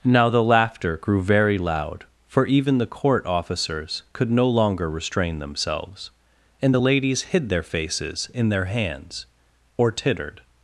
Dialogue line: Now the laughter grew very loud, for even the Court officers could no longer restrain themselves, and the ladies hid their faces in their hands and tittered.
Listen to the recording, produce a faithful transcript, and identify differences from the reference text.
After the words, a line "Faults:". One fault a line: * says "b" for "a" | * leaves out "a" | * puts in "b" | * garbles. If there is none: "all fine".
Now the laughter grew very loud, for even the Court officers could no longer restrain themselves, and the ladies hid their faces in their hands or tittered.
Faults:
* says "or" for "and"